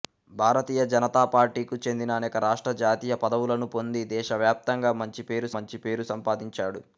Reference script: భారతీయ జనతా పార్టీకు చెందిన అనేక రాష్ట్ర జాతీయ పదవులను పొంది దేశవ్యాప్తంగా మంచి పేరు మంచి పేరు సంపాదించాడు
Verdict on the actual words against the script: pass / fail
pass